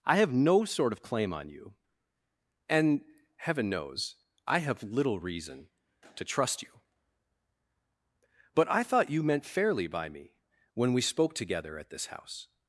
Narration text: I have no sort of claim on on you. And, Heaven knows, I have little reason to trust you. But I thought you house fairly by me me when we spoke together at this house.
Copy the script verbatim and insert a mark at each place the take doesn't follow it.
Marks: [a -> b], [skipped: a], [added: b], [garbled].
I have no sort of claim on [skipped: on] you. And, Heaven knows, I have little reason to trust you. But I thought you [house -> meant] fairly by me [skipped: me] when we spoke together at this house.